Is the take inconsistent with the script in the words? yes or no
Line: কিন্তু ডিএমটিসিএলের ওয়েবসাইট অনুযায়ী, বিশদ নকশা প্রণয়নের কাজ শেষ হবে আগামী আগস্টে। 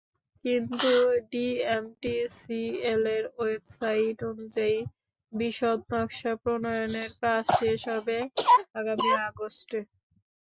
no